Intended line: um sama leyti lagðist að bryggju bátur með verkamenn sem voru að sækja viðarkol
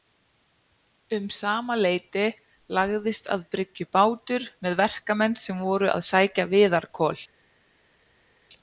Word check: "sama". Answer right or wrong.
right